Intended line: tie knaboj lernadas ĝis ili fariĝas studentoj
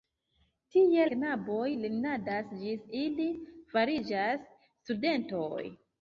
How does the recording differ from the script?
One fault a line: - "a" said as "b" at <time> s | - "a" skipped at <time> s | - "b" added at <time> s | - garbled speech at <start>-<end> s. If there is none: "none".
none